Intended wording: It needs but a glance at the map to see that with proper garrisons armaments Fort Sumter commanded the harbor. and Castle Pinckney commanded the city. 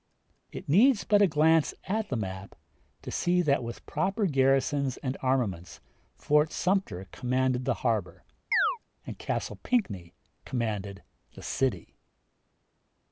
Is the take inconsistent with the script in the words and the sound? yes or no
yes